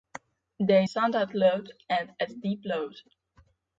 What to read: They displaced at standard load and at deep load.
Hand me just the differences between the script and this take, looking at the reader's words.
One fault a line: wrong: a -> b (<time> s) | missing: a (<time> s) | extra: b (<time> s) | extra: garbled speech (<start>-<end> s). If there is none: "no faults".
missing: displaced at (0.9 s)